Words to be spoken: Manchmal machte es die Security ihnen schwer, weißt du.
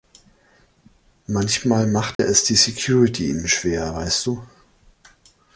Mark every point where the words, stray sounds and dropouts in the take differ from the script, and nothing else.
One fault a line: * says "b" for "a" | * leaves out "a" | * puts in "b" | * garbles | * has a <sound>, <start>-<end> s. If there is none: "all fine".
* has a dropout, 2.1-2.2 s